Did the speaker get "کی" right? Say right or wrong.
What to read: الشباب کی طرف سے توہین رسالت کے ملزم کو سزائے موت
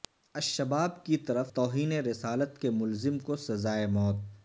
right